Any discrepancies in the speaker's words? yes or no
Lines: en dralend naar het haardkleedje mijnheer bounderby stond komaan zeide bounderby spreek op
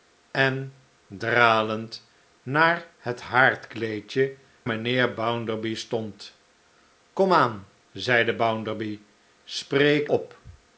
no